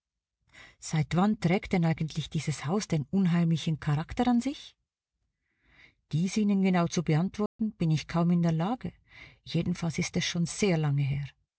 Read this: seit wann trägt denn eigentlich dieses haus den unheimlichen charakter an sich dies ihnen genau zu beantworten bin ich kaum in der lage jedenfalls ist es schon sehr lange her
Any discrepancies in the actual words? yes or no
no